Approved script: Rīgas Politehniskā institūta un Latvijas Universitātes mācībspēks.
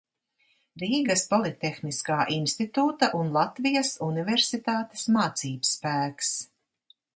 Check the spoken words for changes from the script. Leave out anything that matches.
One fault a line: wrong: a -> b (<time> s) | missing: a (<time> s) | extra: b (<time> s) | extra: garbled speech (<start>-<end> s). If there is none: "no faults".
no faults